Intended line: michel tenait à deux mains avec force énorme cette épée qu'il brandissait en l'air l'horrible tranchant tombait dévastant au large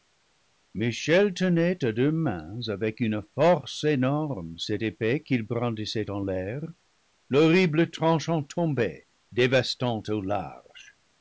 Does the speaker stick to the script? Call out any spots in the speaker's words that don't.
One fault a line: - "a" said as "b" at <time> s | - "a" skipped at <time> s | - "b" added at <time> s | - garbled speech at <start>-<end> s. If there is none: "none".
- "une" added at 3.0 s